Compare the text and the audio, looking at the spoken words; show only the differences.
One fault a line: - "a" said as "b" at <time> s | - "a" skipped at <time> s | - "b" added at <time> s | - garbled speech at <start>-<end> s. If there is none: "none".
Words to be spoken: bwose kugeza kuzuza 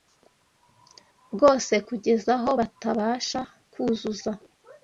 - "aho batabasha" added at 2.4 s